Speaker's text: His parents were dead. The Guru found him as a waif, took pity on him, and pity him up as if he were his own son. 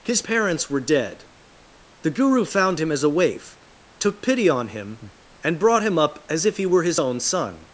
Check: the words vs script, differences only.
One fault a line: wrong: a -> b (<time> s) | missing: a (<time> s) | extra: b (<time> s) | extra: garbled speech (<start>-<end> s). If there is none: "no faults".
wrong: pity -> brought (5.6 s)